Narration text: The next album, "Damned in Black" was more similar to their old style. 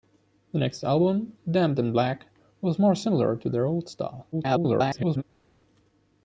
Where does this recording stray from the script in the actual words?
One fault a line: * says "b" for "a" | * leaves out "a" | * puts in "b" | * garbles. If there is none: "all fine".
* garbles